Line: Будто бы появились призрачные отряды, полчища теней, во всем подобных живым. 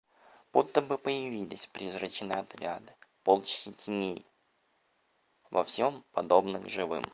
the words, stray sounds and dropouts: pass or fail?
pass